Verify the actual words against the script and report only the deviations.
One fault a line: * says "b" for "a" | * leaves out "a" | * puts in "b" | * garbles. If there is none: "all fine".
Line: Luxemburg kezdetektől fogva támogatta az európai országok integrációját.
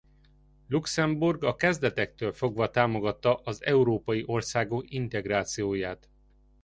* puts in "a"